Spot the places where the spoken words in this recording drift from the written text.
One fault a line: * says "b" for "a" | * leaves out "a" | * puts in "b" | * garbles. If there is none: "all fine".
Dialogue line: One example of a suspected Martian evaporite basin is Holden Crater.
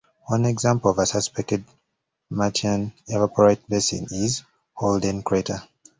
all fine